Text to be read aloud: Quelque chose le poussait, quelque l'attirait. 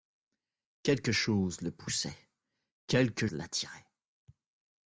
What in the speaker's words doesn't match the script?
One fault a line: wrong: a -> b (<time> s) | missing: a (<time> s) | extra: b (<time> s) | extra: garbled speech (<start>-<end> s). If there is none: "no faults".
no faults